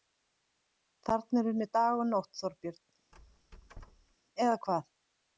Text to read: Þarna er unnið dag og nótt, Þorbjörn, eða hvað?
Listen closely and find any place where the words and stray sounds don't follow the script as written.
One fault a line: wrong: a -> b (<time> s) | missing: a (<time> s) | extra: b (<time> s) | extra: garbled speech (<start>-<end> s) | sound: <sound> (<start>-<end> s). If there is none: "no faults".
sound: squeak (3.1-4.2 s)